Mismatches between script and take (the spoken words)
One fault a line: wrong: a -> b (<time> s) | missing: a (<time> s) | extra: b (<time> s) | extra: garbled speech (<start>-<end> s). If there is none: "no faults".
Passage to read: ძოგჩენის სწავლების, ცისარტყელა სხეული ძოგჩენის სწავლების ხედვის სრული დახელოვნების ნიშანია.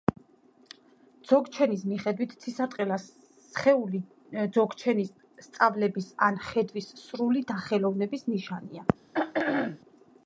wrong: სწავლების -> მიხედვით (1.9 s)
extra: ან (6.3 s)